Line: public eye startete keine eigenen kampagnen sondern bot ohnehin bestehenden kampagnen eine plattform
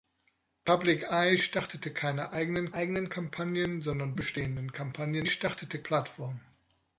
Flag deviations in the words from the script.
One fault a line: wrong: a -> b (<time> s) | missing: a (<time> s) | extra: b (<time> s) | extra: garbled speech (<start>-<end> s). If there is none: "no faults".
extra: eigenen (2.7 s)
missing: bot ohnehin (4.2 s)
wrong: eine -> startete (5.3 s)